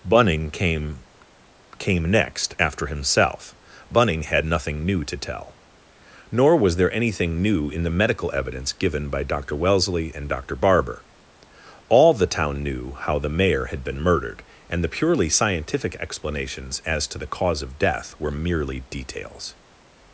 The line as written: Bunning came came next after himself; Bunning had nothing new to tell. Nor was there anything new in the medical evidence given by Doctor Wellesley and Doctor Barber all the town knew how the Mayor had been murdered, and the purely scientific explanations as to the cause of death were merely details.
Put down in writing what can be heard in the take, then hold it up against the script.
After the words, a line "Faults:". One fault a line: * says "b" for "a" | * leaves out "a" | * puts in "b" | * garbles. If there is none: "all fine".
Bunning came came next after himself; Bunning had nothing new to tell. Nor was there anything new in the medical evidence given by Doctor Wellesley and Doctor Barber all the town knew how the Mayor had been murdered, and the purely scientific explanations as to the cause of death were merely details.
Faults:
all fine